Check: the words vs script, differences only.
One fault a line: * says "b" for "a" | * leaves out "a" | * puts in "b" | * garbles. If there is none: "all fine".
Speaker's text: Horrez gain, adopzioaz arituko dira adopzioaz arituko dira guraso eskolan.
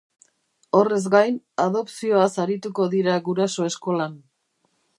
* leaves out "adopzioaz arituko dira"